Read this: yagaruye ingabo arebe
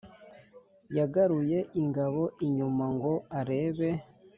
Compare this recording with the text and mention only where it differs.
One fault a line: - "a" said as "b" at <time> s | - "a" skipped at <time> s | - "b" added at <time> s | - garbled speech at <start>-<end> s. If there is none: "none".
- "inyuma ngo" added at 2.5 s